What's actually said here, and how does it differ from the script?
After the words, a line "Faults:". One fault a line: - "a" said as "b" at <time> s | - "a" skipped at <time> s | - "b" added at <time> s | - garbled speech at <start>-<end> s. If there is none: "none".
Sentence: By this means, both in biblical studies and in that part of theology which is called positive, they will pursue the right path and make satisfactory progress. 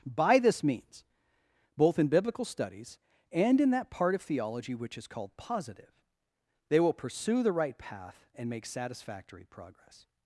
By this means, both in biblical studies and in that part of theology which is called positive, they will pursue the right path and make satisfactory progress.
Faults:
none